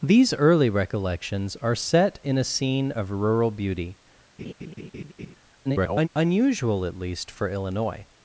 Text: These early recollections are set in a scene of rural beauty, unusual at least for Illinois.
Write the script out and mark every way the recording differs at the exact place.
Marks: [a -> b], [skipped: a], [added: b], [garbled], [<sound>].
These early recollections are set in a scene of rural beauty, [laugh] [garbled] unusual at least for Illinois.